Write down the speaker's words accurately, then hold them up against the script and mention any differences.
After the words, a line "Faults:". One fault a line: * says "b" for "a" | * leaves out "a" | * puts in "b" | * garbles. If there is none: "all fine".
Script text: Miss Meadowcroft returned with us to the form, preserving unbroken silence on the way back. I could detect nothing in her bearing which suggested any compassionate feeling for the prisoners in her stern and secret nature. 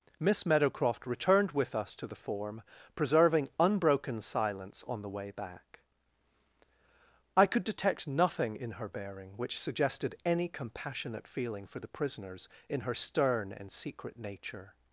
Miss Meadowcroft returned with us to the form, preserving unbroken silence on the way back. I could detect nothing in her bearing which suggested any compassionate feeling for the prisoners in her stern and secret nature.
Faults:
all fine